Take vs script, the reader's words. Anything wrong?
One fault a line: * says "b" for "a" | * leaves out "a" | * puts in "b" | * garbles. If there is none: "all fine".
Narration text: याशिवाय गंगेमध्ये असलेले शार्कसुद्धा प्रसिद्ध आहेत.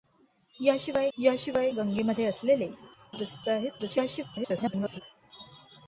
* puts in "याशिवाय"
* leaves out "शार्कसुद्धा"
* garbles